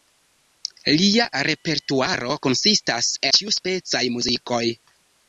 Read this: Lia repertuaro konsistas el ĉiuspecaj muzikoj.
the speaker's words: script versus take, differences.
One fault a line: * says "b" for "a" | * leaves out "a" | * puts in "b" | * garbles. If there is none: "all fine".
* leaves out "el"